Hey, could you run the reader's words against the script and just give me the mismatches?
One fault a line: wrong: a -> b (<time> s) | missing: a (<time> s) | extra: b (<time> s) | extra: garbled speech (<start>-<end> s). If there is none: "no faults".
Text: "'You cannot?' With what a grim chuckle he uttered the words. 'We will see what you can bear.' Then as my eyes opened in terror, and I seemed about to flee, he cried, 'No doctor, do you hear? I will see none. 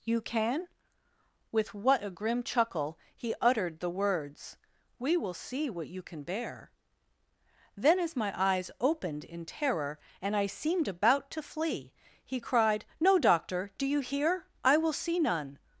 wrong: cannot -> can (0.2 s)